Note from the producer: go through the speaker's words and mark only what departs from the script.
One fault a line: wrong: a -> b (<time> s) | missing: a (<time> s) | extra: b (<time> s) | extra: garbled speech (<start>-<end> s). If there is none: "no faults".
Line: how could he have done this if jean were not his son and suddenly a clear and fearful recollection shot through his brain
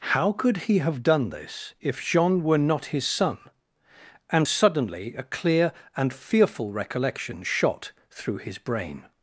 no faults